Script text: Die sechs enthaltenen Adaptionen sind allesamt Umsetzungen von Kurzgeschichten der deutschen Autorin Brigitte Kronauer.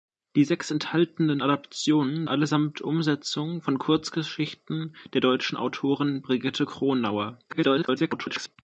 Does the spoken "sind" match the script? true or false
false